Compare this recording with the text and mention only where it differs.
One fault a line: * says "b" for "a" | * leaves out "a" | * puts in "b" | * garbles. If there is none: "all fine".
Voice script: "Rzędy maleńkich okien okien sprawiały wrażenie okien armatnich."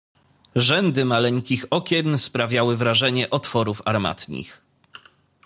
* leaves out "okien"
* says "otworów" for "okien"